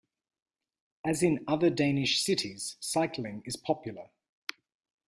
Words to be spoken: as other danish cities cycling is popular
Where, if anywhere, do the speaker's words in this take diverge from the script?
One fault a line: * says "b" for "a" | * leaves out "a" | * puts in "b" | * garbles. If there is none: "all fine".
* puts in "in"